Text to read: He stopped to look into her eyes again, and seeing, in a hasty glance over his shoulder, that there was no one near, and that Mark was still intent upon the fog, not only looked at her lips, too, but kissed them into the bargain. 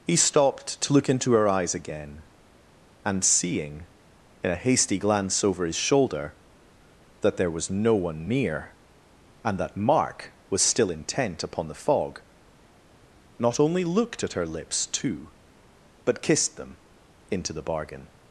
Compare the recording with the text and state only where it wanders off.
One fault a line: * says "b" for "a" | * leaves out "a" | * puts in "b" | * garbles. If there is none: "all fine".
all fine